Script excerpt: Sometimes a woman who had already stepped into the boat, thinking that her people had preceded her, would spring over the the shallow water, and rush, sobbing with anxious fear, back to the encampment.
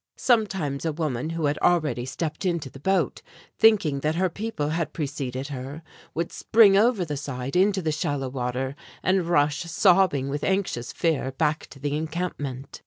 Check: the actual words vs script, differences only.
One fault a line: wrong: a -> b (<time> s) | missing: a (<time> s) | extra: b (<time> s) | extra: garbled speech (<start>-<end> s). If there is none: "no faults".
extra: side into (7.2 s)